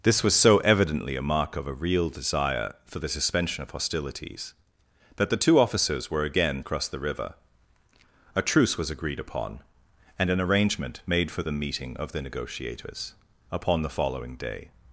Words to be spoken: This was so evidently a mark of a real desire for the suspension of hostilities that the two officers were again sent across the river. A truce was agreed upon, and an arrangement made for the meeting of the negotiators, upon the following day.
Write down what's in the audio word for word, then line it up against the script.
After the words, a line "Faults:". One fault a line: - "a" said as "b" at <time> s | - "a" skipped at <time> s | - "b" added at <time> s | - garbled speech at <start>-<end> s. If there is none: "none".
This was so evidently a mark of a real desire for the suspension of hostilities that the two officers were again across the river. A truce was agreed upon, and an arrangement made for the meeting of the negotiators, upon the following day.
Faults:
- "sent" skipped at 6.6 s